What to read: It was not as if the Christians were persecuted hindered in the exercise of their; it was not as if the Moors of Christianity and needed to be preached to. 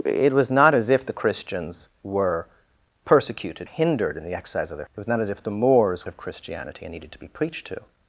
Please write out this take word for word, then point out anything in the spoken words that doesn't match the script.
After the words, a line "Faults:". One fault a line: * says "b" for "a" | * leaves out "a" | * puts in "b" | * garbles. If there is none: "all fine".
It was not as if the Christians were persecuted hindered in the exercise of their; it was not as if the Moors of Christianity and needed to be preached to.
Faults:
all fine